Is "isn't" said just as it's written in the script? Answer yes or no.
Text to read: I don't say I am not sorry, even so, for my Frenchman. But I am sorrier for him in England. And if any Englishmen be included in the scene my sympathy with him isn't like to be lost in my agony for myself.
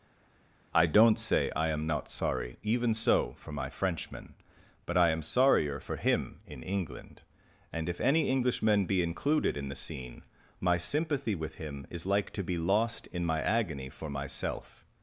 no